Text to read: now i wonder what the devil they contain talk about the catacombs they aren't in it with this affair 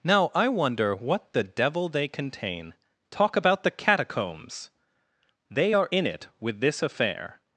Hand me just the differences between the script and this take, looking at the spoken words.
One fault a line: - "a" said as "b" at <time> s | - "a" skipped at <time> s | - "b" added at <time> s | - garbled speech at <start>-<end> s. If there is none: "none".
- "aren't" said as "are" at 5.7 s